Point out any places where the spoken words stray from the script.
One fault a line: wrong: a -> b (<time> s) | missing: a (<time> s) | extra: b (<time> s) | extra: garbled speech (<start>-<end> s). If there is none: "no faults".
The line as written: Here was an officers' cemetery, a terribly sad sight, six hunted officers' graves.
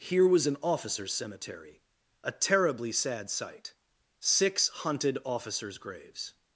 no faults